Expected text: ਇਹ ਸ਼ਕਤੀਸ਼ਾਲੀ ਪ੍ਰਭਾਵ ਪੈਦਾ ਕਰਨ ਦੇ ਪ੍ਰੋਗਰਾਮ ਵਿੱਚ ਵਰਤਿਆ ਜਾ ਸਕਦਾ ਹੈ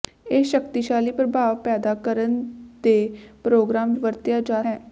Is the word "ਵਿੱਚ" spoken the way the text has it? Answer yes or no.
no